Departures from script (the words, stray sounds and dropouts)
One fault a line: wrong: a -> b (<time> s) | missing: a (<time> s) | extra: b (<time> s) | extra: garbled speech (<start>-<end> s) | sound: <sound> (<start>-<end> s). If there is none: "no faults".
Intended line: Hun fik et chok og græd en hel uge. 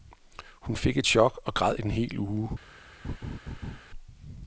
sound: laugh (3.0-3.8 s)